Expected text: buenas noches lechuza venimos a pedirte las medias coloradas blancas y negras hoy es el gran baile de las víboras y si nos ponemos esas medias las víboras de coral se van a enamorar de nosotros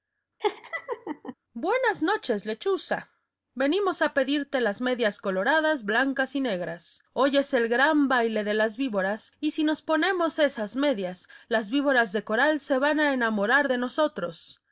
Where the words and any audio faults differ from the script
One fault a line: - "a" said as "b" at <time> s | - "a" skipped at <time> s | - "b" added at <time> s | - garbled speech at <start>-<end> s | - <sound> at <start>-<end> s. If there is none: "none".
- laugh at 0.4-1.3 s